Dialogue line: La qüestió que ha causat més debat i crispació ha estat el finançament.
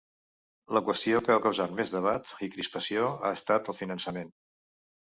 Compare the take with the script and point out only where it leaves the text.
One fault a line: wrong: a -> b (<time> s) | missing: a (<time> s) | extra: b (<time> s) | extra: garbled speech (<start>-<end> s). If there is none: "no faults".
no faults